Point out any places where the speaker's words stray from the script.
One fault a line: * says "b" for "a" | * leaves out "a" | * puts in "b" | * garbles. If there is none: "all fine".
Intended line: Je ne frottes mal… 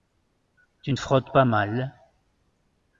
* says "Tu" for "Je"
* puts in "pas"